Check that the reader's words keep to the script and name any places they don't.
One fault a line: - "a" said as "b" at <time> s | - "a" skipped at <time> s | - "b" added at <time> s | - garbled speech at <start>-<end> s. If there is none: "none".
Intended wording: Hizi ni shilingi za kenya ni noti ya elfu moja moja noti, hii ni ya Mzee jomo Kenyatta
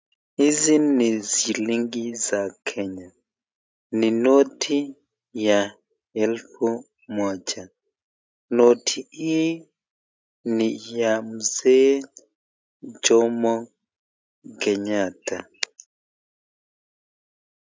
- "moja" skipped at 7.7 s